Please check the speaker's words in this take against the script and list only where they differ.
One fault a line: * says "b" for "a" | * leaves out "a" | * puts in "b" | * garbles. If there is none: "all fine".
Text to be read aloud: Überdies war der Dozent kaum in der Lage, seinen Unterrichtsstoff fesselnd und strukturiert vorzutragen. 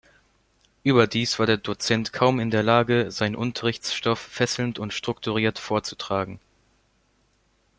all fine